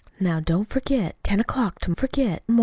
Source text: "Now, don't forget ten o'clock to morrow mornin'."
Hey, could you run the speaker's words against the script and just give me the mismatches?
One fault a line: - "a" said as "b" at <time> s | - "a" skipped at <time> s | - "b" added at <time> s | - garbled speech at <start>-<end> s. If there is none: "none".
- "morrow" said as "forget" at 1.9 s